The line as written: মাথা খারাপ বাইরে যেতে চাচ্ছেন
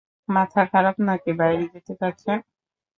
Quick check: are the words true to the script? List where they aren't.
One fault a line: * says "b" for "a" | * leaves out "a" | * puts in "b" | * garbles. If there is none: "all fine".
* puts in "নাকি"